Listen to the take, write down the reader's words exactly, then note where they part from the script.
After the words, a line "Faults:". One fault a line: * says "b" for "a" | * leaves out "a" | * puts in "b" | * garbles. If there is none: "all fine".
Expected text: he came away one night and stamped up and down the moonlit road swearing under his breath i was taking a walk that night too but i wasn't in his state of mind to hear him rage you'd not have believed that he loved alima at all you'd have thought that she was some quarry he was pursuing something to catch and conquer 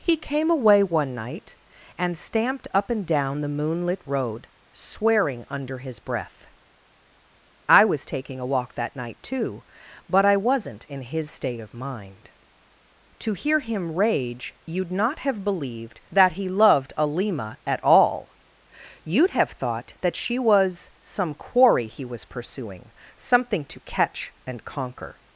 he came away one night and stamped up and down the moonlit road swearing under his breath i was taking a walk that night too but i wasn't in his state of mind to hear him rage you'd not have believed that he loved alima at all you'd have thought that she was some quarry he was pursuing something to catch and conquer
Faults:
all fine